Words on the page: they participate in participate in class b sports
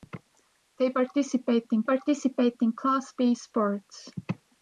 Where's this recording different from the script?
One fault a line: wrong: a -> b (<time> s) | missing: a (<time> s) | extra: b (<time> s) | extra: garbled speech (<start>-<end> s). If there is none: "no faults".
no faults